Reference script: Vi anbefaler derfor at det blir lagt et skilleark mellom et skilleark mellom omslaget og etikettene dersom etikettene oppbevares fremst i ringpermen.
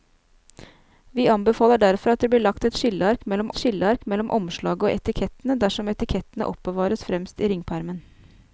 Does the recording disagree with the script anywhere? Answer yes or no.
no